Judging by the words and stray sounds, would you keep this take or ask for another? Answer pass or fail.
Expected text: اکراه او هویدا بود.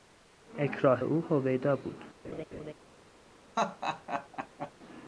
fail